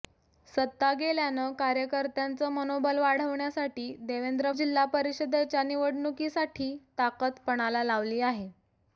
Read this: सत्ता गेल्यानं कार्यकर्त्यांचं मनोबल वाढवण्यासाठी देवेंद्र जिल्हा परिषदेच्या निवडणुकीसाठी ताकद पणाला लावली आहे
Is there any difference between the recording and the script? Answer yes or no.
no